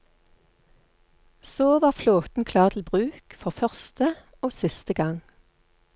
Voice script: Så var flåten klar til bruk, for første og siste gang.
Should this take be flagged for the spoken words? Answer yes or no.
no